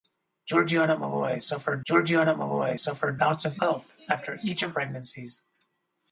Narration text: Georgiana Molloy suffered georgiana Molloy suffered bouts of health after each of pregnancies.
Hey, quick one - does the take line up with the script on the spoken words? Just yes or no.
yes